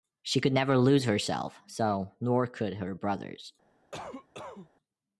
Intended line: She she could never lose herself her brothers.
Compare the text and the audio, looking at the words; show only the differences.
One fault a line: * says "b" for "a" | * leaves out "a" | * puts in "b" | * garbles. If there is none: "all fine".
* leaves out "she"
* puts in "so nor could"